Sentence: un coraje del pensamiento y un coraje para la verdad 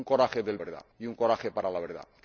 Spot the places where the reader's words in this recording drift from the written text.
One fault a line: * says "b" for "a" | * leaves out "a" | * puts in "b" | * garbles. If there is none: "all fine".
* says "verdad" for "pensamiento"